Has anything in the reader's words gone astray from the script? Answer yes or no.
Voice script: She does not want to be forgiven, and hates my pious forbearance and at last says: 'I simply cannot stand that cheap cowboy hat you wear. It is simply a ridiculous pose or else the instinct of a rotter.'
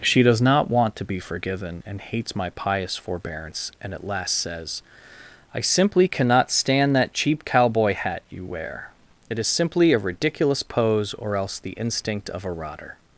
no